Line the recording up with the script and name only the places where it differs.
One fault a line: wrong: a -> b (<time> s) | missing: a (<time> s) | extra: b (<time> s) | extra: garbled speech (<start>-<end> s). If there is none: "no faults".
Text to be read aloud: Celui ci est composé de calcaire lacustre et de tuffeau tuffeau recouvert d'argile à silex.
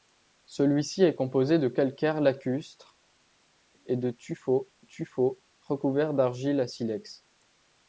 no faults